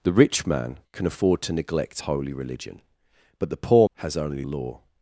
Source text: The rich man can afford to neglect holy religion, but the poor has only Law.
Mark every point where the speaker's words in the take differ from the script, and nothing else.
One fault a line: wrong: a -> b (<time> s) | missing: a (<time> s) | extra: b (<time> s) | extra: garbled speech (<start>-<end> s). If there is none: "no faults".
no faults